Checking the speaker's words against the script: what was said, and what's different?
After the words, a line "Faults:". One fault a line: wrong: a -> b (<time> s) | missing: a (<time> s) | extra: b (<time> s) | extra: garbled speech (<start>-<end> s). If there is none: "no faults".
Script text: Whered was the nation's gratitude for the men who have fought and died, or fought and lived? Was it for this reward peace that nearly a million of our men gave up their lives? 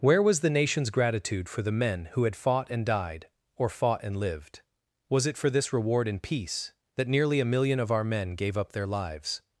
Where was the nation's gratitude for the men who had fought and died, or fought and lived? Was it for this reward in peace that nearly a million of our men gave up their lives?
Faults:
wrong: Whered -> Where (0.0 s)
wrong: have -> had (2.2 s)
extra: in (6.1 s)